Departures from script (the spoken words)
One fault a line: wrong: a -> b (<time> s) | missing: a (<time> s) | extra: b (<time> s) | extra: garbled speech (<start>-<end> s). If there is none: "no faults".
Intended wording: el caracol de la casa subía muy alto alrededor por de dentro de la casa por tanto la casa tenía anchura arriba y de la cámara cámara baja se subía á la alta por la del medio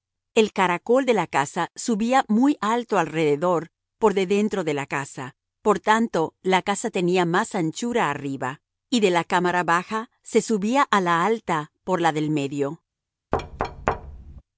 extra: más (7.3 s)
missing: cámara (9.6 s)